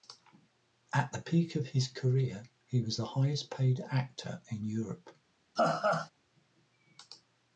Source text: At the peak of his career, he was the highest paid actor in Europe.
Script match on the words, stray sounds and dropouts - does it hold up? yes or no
no